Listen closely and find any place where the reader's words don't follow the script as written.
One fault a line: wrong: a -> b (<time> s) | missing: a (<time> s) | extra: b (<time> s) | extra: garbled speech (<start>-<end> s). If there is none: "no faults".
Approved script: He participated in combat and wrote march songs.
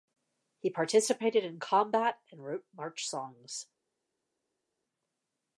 no faults